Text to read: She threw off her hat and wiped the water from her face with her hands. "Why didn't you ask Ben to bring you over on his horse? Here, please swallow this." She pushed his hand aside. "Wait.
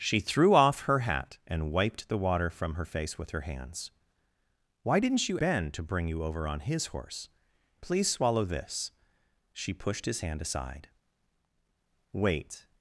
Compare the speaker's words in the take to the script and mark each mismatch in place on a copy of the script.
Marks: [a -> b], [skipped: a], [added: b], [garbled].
She threw off her hat and wiped the water from her face with her hands. "Why didn't you [skipped: ask] Ben to bring you over on his horse? [skipped: Here,] please swallow this." She pushed his hand aside. "Wait.